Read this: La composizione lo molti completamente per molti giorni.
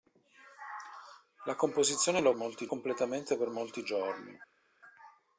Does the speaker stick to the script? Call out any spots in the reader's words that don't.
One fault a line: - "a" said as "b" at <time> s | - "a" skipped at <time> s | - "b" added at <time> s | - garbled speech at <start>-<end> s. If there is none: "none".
none